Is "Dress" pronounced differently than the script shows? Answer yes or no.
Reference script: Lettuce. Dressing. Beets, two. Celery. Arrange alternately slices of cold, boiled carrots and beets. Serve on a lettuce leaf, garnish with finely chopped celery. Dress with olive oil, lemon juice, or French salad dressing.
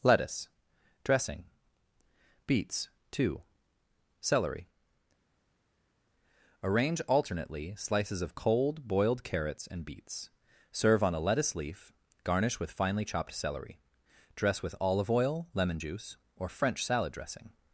no